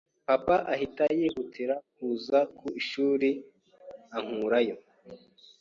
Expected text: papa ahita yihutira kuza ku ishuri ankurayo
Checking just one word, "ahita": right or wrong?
right